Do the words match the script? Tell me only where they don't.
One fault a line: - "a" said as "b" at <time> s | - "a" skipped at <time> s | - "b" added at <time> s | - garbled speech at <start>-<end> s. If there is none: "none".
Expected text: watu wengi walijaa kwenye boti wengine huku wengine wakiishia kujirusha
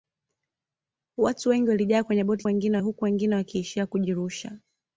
none